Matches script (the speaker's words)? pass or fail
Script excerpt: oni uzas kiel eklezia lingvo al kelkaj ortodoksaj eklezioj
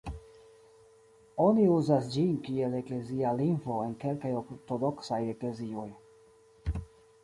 fail